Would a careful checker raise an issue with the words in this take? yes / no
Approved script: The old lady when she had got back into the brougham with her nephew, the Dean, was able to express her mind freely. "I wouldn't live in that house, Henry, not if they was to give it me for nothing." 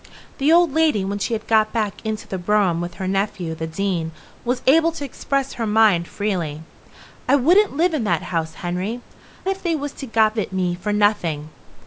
yes